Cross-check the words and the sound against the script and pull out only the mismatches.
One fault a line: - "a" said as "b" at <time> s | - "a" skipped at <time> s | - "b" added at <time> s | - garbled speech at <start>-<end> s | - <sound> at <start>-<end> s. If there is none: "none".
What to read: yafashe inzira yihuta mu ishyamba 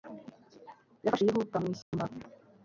- "inzira" skipped at 1.2 s
- dropout at 1.8-1.9 s